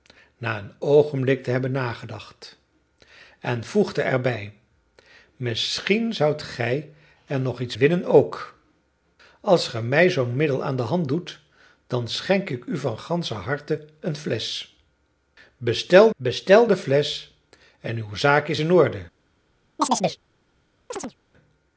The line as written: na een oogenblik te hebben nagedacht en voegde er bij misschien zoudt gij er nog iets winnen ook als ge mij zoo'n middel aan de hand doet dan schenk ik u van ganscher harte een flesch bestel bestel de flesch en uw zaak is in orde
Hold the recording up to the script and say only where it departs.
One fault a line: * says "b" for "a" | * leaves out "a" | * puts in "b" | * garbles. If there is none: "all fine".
all fine